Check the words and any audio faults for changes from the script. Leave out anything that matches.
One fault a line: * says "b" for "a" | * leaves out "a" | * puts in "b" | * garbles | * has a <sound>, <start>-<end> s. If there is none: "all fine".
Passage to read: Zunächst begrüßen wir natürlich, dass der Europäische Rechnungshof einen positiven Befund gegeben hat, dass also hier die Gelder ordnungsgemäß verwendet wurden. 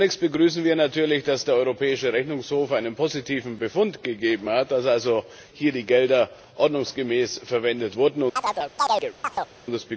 * has a chirp, 8.4-9.5 s